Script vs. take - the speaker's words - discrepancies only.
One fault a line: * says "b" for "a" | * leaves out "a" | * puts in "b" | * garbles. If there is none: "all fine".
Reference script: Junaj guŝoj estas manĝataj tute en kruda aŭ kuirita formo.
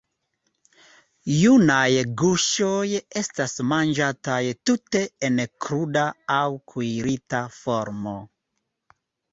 all fine